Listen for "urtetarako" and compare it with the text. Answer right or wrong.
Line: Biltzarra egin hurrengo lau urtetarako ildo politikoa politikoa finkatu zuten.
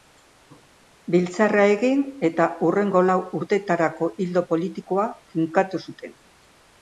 right